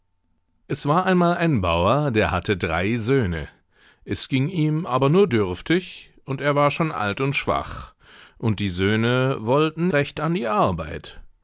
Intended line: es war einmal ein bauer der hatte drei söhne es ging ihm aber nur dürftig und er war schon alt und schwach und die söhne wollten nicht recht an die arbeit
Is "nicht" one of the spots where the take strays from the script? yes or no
yes